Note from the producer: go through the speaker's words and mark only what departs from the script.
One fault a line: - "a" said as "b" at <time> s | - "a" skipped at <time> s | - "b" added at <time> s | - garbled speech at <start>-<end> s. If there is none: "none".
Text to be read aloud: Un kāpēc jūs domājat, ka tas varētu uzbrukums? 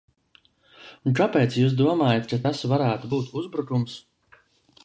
- "būt" added at 3.1 s